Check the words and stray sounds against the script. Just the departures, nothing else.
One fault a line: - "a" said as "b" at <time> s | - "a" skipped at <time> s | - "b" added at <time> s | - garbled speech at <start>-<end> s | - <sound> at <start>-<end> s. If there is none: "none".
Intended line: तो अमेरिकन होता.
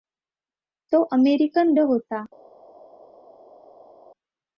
none